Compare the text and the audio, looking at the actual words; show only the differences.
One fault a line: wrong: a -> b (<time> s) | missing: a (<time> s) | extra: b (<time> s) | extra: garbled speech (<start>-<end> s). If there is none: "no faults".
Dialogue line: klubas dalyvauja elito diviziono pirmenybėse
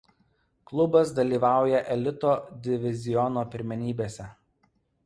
no faults